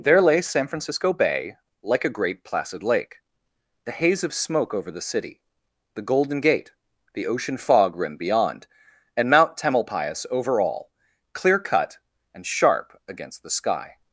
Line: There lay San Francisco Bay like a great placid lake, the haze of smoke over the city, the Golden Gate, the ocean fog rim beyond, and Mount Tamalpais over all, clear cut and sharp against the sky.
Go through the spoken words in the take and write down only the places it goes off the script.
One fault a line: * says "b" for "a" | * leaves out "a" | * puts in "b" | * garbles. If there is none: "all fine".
all fine